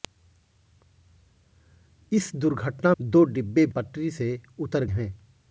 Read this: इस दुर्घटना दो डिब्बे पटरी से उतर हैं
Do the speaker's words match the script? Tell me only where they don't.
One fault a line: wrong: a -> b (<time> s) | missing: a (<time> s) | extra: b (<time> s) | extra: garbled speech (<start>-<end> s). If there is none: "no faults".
no faults